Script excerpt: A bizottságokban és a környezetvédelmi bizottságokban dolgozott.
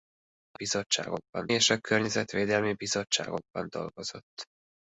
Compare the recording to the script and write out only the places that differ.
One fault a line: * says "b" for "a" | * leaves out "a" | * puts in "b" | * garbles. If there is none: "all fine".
all fine